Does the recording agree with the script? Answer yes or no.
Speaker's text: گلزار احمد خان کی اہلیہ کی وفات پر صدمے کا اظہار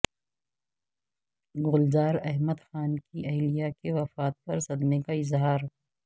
yes